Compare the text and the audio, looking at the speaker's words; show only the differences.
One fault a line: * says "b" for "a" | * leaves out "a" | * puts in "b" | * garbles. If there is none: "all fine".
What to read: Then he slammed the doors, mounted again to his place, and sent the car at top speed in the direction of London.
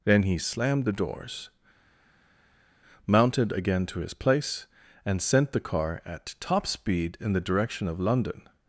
all fine